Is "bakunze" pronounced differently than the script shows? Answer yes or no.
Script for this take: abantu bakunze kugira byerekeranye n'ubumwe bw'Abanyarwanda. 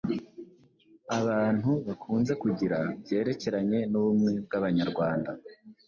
no